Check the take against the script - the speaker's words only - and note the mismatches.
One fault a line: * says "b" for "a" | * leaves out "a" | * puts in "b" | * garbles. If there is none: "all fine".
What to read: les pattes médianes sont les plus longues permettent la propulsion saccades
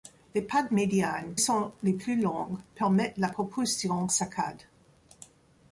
all fine